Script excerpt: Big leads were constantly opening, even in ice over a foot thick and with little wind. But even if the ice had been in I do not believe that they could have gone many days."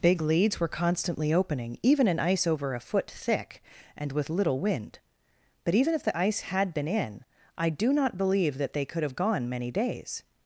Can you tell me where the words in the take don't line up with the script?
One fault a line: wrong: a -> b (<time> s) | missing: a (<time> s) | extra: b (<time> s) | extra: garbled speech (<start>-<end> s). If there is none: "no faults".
no faults